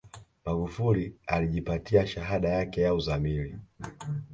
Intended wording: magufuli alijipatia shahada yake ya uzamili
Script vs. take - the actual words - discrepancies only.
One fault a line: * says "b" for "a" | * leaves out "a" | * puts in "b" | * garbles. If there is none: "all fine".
all fine